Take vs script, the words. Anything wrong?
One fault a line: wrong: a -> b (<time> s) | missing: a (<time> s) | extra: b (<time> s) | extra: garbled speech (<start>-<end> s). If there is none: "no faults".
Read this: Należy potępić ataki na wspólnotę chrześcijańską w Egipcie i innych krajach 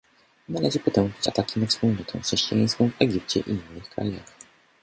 no faults